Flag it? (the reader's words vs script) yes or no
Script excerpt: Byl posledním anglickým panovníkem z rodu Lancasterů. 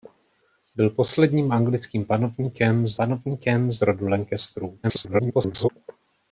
yes